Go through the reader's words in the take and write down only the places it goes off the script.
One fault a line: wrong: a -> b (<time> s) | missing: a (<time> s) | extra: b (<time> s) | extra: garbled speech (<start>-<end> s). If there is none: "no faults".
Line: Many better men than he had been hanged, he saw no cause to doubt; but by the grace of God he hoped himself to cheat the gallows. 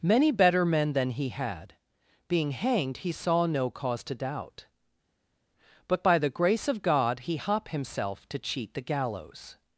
wrong: been -> being (2.3 s)
wrong: hoped -> hop (7.4 s)